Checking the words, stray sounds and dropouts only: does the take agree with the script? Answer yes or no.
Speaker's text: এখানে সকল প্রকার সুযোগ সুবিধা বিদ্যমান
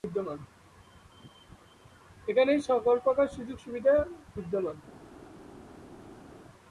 yes